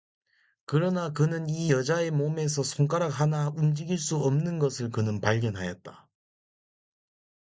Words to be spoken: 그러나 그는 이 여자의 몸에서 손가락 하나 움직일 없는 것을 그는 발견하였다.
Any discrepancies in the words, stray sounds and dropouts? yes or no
yes